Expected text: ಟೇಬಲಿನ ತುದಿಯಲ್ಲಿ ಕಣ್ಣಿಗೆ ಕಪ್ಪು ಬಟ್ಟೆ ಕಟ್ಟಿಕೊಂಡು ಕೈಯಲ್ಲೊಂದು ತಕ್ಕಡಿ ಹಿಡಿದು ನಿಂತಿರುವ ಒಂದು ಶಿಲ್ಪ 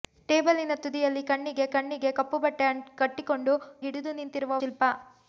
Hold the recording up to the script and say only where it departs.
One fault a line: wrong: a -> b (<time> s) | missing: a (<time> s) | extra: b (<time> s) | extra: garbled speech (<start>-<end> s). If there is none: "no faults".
extra: ಕಣ್ಣಿಗೆ (1.7 s)
missing: ಕೈಯಲ್ಲೊಂದು ತಕ್ಕಡಿ (3.5 s)
missing: ಒಂದು (4.6 s)